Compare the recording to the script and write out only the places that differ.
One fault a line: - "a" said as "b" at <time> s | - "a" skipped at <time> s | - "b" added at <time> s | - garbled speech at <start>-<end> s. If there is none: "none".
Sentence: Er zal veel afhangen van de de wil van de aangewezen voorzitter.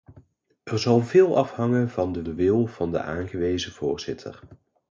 none